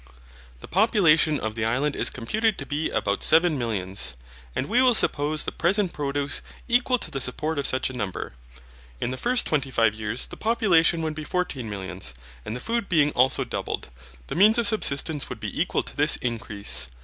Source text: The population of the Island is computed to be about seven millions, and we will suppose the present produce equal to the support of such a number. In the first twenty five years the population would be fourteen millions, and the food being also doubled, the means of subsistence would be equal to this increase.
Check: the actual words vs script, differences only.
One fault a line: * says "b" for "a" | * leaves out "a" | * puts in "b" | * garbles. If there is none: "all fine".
all fine